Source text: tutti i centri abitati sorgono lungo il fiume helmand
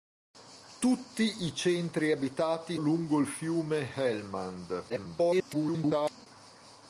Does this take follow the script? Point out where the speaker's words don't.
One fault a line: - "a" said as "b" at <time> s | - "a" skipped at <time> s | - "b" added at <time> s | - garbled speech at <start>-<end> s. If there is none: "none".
- "sorgono" skipped at 2.8 s
- garbled speech at 4.9-6.3 s